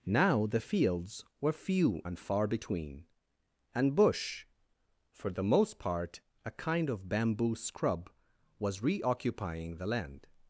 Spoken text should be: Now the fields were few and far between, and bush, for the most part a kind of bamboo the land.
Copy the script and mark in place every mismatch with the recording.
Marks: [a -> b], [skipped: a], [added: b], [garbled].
Now the fields were few and far between, and bush, for the most part a kind of bamboo [added: scrub was reoccupying] the land.